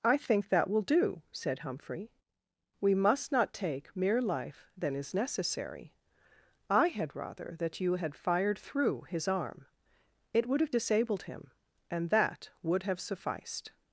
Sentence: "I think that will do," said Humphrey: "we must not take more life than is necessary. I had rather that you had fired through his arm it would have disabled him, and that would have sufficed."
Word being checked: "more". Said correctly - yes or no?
no